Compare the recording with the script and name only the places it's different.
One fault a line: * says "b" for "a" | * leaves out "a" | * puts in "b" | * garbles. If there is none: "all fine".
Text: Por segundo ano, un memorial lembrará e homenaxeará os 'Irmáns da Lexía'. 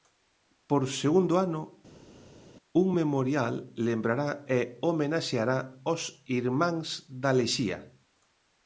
all fine